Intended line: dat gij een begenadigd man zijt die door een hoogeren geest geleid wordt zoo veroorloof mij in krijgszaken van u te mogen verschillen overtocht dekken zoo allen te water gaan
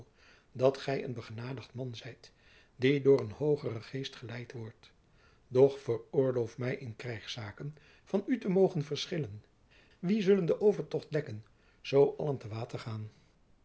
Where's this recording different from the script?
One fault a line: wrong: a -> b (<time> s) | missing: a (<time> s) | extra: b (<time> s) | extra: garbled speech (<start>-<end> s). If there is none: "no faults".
wrong: zoo -> doch (5.5 s)
extra: wie zullen den (10.0 s)